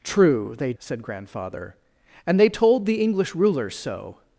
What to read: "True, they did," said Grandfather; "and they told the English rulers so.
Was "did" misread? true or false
true